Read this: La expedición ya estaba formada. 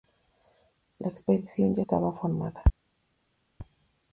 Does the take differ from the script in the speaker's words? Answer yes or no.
no